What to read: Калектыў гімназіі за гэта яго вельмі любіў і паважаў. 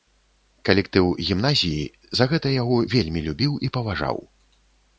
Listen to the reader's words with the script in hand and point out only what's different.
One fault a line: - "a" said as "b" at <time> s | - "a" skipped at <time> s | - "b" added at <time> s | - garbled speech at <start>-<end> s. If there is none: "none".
none